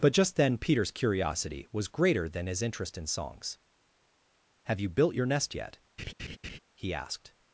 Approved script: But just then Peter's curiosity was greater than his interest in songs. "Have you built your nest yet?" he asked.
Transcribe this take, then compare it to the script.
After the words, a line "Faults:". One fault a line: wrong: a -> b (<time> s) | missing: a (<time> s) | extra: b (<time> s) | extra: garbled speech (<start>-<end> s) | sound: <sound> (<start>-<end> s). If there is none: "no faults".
But just then Peter's curiosity was greater than his interest in songs. "Have you built your nest yet?" he asked.
Faults:
sound: laugh (6.0-6.6 s)